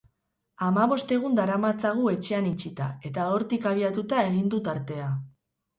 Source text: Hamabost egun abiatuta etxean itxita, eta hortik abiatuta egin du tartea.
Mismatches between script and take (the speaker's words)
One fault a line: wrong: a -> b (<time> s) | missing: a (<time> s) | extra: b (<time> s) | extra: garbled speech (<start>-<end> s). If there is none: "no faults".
wrong: abiatuta -> daramatzagu (1.4 s)